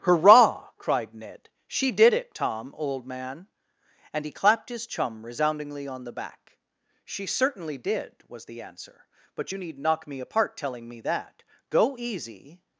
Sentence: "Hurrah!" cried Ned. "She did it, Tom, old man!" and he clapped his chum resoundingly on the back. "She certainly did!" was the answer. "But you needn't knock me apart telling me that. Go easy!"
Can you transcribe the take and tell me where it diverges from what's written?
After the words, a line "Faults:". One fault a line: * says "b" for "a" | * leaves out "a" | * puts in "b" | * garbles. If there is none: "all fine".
"Hurrah!" cried Ned. "She did it, Tom, old man!" and he clapped his chum resoundingly on the back. "She certainly did!" was the answer. "But you need knock me apart telling me that. Go easy!"
Faults:
* says "need" for "needn't"